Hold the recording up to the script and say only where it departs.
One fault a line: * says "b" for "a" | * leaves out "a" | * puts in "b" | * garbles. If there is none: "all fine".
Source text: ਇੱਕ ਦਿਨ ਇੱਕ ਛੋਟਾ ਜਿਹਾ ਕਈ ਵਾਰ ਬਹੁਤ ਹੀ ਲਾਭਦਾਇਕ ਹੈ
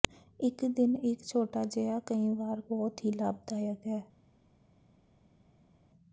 all fine